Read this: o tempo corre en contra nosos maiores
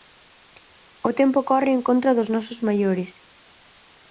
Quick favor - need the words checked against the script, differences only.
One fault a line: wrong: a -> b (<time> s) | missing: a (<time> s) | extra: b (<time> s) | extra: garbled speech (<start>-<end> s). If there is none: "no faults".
extra: dos (2.2 s)